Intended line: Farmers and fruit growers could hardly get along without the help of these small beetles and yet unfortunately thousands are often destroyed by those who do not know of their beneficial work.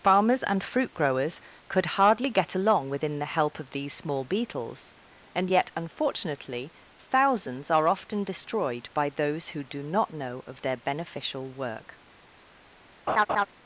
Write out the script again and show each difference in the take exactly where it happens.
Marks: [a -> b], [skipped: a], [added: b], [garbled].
Farmers and fruit growers could hardly get along [without -> within] the help of these small beetles and yet unfortunately thousands are often destroyed by those who do not know of their beneficial work.